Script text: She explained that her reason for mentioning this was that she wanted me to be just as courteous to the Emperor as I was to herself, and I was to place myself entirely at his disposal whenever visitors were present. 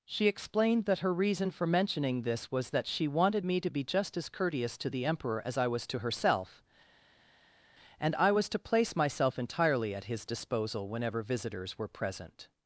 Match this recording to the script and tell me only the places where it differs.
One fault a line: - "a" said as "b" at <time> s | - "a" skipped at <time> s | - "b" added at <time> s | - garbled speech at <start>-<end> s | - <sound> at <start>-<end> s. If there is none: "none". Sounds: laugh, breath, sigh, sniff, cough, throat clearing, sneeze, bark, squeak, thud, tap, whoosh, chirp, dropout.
none